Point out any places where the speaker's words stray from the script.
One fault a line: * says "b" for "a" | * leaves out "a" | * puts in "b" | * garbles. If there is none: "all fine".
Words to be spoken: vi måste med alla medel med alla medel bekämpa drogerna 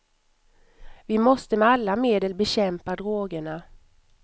* leaves out "med alla medel"